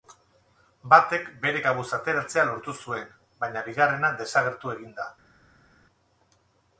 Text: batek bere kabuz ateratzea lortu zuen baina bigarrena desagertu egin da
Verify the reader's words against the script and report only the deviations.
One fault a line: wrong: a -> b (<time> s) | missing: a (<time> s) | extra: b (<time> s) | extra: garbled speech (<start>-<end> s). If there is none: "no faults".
no faults